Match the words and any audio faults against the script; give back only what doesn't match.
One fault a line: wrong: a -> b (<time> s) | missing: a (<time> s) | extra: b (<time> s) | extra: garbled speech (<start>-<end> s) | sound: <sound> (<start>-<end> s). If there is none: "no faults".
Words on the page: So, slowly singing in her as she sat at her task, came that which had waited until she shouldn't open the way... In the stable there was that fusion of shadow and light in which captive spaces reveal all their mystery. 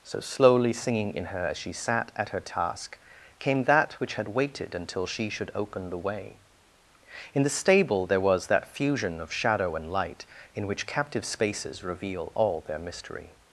wrong: shouldn't -> should (5.3 s)